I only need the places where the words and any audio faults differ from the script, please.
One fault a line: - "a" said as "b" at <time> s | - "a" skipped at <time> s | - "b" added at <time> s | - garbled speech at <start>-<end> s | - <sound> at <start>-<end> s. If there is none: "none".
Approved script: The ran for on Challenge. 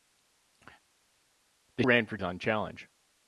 none